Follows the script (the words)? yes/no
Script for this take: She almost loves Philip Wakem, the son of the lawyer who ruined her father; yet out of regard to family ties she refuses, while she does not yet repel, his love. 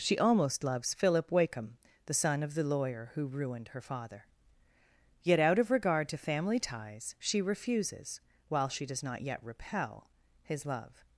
yes